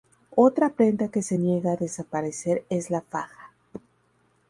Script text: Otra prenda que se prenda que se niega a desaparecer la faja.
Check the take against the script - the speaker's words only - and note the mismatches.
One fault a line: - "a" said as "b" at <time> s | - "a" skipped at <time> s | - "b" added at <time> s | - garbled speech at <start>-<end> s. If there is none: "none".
- "prenda que se" skipped at 1.4 s
- "es" added at 2.7 s